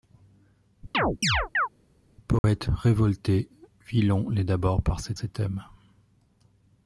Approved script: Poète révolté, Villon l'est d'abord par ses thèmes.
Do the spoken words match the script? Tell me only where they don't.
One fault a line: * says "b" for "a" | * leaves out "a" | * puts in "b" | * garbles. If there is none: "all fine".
* puts in "ses"